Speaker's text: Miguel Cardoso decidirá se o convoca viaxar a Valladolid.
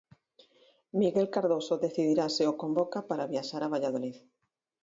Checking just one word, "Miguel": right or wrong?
right